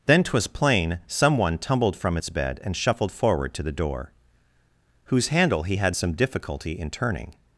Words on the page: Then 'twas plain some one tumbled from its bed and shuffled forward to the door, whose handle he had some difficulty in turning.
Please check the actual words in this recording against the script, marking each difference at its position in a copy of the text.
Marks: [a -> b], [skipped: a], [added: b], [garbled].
Then 'twas plain some one tumbled from its bed and shuffled forward to the door, whose handle he had some difficulty in turning.